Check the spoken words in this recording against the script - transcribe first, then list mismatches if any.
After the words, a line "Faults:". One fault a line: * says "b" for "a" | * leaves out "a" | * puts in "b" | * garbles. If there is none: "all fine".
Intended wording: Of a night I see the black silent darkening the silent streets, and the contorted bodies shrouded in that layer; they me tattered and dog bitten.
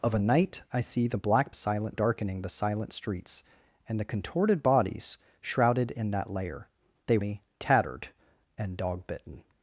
Of a night I see the black silent darkening the silent streets, and the contorted bodies shrouded in that layer; they me tattered and dog bitten.
Faults:
all fine